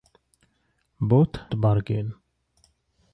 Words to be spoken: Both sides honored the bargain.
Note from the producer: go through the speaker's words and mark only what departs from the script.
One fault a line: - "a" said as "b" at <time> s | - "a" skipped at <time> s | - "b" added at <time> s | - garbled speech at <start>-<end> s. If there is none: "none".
- "sides honored" skipped at 1.4 s